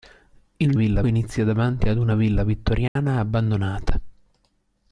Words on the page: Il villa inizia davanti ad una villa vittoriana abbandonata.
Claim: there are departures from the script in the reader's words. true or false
false